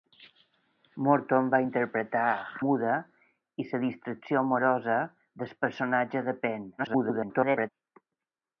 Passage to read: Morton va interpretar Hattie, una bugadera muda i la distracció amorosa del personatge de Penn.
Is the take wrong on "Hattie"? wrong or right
wrong